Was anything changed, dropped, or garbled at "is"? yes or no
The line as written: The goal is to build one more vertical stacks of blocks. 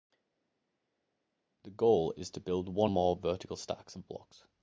no